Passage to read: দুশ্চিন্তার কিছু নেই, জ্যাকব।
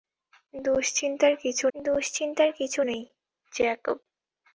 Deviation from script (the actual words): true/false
true